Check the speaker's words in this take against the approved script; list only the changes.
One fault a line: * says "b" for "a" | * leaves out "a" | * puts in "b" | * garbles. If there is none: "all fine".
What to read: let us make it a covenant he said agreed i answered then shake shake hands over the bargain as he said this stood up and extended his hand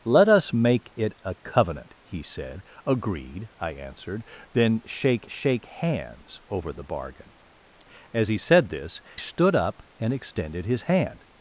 all fine